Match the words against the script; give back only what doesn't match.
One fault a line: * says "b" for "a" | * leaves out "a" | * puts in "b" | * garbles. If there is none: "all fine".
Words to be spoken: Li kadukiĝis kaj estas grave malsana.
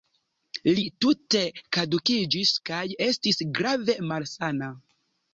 * puts in "tute"
* says "estis" for "estas"